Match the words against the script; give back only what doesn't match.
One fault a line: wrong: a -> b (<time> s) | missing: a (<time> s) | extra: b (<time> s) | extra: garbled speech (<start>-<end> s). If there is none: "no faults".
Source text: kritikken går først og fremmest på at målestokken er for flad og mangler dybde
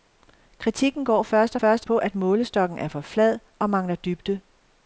wrong: fremmest -> først (1.5 s)